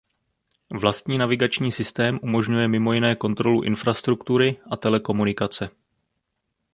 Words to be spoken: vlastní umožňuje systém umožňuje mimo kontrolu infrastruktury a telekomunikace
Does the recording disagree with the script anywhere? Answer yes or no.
yes